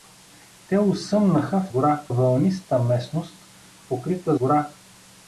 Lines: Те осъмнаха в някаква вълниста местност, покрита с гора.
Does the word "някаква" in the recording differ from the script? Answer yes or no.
yes